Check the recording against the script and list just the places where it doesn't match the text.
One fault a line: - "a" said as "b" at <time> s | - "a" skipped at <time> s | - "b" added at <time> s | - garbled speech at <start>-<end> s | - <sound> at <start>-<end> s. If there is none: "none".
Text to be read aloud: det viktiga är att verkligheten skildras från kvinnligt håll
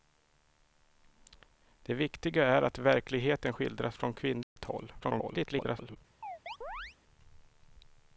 - dropout at 4.4-4.6 s
- garbled speech at 5.0-6.0 s
- chirp at 6.2-7.0 s